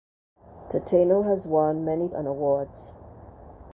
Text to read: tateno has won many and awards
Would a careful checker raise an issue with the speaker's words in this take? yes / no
no